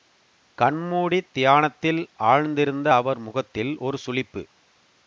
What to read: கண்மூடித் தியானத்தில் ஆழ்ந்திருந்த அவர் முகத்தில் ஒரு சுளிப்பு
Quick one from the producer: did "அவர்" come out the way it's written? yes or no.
yes